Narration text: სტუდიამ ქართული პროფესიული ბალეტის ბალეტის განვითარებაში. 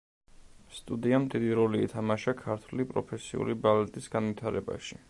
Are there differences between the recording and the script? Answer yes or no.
yes